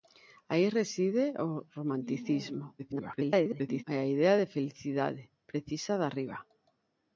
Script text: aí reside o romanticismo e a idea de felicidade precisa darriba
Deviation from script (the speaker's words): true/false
true